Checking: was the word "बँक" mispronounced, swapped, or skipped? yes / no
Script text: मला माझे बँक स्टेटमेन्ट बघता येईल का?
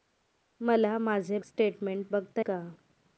yes